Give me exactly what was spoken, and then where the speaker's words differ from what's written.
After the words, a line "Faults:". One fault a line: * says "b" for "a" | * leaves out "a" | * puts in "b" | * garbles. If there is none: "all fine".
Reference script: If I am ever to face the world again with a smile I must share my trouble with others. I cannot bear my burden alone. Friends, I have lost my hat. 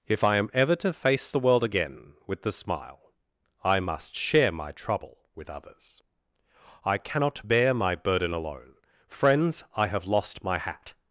If I am ever to face the world again with the smile I must share my trouble with others. I cannot bear my burden alone. Friends, I have lost my hat.
Faults:
* says "the" for "a"